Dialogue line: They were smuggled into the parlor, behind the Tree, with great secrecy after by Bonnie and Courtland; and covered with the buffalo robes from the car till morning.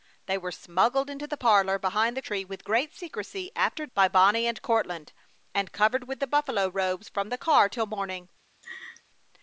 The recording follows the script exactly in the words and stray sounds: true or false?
false